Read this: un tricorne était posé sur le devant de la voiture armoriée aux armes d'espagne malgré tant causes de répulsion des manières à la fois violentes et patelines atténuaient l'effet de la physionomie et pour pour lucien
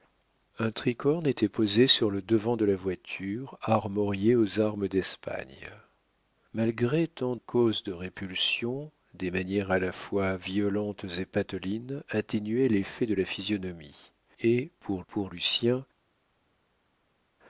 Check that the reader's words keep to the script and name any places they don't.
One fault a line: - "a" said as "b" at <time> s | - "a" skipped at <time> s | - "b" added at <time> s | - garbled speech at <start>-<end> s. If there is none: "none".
none